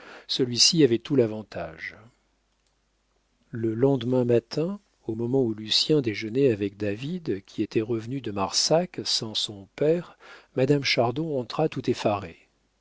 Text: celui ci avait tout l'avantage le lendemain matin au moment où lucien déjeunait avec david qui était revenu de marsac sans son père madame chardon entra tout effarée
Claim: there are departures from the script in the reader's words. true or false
false